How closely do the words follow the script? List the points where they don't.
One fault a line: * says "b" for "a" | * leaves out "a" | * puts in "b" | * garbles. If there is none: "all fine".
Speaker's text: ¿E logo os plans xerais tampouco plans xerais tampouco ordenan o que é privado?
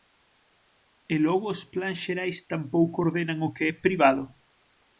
* leaves out "plans xerais tampouco"